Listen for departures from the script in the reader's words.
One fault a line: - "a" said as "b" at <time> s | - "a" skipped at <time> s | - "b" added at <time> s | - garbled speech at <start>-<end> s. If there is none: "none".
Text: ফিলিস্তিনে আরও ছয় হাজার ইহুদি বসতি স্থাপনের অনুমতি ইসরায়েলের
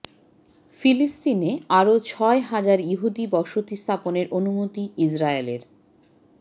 none